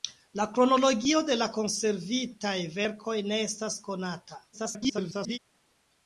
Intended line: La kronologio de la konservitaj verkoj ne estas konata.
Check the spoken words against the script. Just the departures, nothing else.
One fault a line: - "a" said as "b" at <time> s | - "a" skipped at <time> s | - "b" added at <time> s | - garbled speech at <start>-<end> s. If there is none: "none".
- garbled speech at 4.5-5.4 s